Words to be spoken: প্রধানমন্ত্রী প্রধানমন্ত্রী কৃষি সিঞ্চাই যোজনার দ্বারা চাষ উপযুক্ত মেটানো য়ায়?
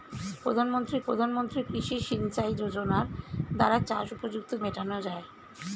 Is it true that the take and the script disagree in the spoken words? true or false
false